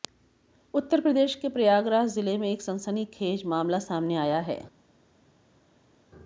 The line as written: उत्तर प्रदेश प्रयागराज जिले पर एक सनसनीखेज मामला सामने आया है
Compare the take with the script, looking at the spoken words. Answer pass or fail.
fail